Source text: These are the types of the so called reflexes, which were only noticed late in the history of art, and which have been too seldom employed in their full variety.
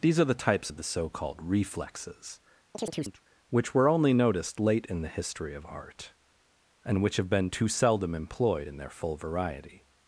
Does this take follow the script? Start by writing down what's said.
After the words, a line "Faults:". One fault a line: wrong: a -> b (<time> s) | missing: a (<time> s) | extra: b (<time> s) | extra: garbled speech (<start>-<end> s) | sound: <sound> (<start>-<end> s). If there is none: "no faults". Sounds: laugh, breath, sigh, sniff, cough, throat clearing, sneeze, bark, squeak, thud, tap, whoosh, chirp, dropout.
These are the types of the so called reflexes, which were only noticed late in the history of art, and which have been too seldom employed in their full variety.
Faults:
sound: chirp (2.7-3.2 s)